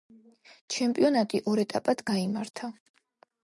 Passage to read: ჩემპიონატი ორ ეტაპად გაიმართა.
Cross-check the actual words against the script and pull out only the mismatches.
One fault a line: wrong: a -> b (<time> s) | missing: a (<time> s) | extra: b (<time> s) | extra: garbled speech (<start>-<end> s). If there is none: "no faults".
no faults